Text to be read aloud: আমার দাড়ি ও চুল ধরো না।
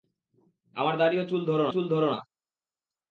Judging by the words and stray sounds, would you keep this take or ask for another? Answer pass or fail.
fail